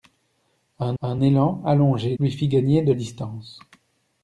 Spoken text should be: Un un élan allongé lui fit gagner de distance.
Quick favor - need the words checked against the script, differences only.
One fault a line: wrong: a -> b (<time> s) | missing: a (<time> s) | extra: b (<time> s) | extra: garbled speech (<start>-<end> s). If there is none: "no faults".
no faults